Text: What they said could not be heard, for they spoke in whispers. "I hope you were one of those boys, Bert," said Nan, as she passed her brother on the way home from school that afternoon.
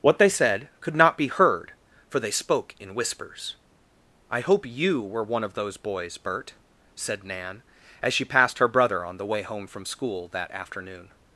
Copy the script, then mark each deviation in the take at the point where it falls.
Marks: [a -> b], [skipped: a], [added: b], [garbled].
What they said could not be heard, for they spoke in whispers. "I hope you were one of those boys, Bert," said Nan, as she passed her brother on the way home from school that afternoon.